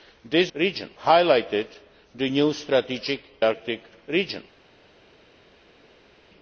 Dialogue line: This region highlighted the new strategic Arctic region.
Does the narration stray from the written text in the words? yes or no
no